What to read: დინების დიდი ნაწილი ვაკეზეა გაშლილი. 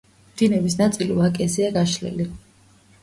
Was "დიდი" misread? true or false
true